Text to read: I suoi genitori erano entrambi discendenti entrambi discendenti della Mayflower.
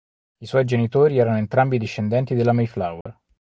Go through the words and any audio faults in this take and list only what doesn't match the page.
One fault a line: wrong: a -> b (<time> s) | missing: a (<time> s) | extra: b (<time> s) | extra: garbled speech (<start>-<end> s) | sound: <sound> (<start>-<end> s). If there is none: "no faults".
missing: entrambi discendenti (2.3 s)
sound: dropout (3.0-3.1 s)